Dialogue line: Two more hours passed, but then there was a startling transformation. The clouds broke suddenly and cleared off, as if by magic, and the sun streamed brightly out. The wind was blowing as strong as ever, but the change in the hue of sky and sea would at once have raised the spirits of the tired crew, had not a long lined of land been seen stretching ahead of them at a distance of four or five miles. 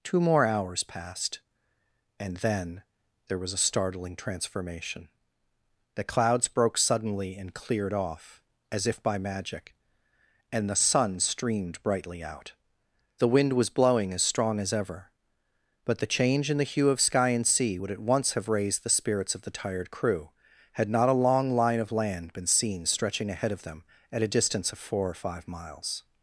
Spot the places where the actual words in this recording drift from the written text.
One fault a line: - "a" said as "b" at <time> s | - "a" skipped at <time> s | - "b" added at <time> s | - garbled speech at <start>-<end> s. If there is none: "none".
- "but" said as "and" at 2.2 s
- "lined" said as "line" at 21.5 s